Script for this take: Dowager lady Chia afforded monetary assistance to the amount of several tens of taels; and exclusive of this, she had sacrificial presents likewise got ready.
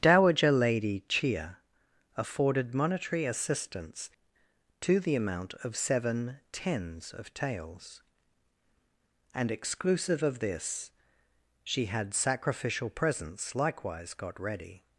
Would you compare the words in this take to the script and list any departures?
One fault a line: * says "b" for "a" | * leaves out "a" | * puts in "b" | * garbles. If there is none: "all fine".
* says "seven" for "several"